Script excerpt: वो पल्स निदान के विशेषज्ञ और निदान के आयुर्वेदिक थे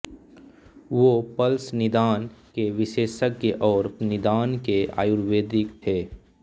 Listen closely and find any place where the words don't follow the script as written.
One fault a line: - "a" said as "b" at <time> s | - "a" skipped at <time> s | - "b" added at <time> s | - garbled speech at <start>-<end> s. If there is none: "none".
none